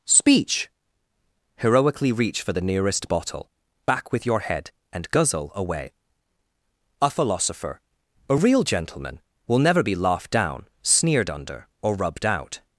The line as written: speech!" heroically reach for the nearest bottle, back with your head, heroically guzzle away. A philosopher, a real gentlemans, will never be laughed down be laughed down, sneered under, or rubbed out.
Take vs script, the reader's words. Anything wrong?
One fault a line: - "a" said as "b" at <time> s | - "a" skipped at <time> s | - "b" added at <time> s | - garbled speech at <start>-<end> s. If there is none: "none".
- "heroically" said as "and" at 4.9 s
- "gentlemans" said as "gentleman" at 8.6 s
- "be laughed down" skipped at 10.7 s